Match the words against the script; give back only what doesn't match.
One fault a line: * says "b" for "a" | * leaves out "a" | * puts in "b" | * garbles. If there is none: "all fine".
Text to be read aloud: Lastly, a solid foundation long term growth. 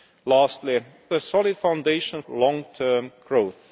all fine